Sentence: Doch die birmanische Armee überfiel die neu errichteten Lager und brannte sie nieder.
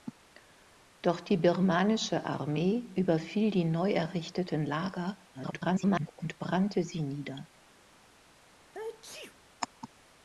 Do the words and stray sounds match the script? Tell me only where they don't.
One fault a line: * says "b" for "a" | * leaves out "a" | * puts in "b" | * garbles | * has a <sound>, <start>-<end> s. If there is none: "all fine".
* garbles
* has a sneeze, 8.6-9.4 s